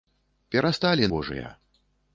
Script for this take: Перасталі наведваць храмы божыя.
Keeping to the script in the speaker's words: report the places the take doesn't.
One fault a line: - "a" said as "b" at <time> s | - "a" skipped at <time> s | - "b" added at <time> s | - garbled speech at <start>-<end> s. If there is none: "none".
- "наведваць храмы" skipped at 1.1 s